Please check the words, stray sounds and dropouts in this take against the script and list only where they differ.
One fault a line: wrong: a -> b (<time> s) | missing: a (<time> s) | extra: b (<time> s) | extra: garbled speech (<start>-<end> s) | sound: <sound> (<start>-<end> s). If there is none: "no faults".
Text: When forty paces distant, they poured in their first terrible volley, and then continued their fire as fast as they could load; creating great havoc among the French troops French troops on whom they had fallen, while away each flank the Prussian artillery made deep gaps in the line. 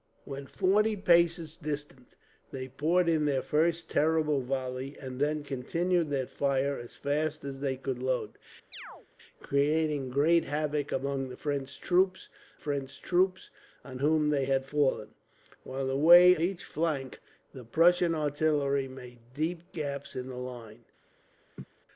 sound: chirp (8.7-9.1 s)
sound: laugh (21.6-21.6 s)